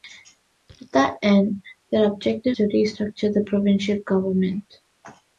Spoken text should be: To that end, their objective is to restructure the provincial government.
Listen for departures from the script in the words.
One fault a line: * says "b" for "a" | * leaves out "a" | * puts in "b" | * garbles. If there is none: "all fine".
* leaves out "is"